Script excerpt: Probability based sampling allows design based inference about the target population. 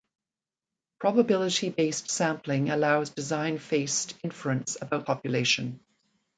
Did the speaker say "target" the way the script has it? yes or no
no